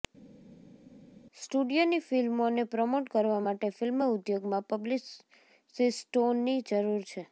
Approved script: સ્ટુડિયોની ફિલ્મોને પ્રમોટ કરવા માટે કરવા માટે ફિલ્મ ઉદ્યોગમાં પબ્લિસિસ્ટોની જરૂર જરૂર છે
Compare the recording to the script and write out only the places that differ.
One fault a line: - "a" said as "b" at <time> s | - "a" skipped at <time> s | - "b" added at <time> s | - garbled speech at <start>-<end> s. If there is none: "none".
- "કરવા માટે" skipped at 3.7 s
- "જરૂર" skipped at 7.0 s